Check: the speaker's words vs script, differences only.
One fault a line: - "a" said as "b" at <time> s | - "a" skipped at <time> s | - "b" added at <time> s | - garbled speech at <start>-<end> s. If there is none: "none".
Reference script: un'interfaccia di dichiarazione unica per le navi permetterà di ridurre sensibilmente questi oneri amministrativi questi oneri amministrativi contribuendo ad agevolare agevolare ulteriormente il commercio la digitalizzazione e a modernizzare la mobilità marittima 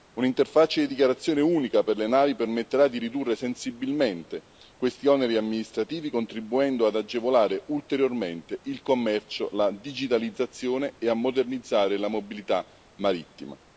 - "questi oneri amministrativi" skipped at 6.1 s
- "agevolare" skipped at 7.6 s